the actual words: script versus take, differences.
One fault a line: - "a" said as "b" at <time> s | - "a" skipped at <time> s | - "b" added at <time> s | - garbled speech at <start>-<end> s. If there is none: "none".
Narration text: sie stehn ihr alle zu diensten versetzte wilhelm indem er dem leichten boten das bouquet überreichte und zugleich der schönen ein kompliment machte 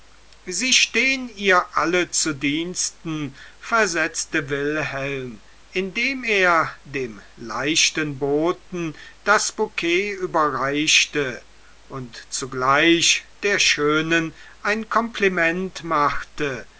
none